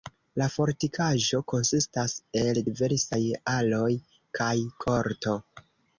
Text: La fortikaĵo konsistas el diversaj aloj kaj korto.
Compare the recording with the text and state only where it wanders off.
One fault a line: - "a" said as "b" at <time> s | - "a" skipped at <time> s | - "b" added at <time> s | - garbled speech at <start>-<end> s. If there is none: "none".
none